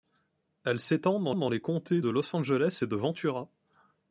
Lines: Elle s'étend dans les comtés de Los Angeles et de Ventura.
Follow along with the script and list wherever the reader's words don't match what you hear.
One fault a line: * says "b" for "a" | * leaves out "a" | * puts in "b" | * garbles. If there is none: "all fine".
* puts in "dans"